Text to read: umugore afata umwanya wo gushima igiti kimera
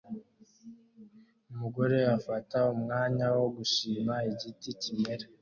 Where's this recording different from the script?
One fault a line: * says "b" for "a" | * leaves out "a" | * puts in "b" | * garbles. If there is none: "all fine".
all fine